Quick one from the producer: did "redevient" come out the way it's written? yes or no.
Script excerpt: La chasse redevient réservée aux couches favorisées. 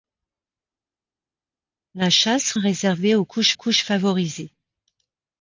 no